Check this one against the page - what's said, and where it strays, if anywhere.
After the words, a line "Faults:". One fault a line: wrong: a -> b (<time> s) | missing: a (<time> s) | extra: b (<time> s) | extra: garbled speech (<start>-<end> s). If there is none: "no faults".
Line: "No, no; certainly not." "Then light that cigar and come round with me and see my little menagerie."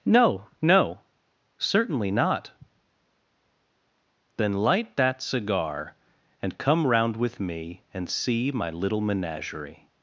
"No, no; certainly not." "Then light that cigar and come round with me and see my little menagerie."
Faults:
no faults